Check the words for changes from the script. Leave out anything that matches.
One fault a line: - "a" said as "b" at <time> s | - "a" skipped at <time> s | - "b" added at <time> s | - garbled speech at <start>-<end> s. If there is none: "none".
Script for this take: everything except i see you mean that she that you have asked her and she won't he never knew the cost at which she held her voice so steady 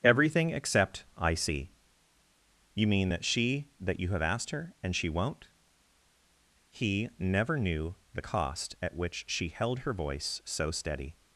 none